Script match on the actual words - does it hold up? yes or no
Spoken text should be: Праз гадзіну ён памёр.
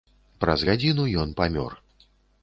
yes